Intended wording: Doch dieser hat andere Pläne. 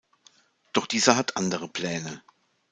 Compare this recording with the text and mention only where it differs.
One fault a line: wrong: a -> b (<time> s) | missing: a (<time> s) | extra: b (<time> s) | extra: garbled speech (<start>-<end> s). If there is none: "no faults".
no faults